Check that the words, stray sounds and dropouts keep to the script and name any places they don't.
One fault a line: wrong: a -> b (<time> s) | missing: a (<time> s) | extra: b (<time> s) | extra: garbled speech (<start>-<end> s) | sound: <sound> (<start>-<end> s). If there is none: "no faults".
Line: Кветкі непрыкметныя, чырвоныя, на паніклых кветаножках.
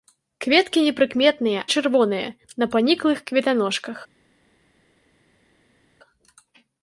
no faults